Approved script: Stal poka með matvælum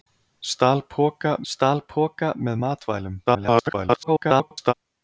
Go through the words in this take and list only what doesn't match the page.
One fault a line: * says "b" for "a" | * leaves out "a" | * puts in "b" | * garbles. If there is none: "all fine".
* puts in "stal poka"
* garbles